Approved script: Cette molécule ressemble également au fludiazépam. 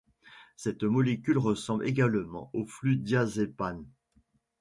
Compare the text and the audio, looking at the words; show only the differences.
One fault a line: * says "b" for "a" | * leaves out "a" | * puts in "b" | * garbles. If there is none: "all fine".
all fine